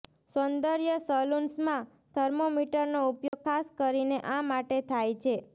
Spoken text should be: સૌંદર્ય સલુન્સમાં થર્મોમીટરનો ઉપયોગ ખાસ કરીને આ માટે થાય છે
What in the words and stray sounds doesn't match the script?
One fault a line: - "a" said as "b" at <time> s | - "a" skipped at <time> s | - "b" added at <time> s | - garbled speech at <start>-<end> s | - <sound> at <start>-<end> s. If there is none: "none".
- dropout at 3.3-3.3 s